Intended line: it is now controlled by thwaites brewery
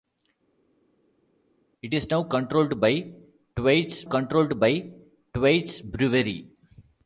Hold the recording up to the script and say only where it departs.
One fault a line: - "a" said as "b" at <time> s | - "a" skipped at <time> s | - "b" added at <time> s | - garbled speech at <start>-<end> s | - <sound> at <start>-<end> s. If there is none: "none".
- "controlled by thwaites" added at 4.0 s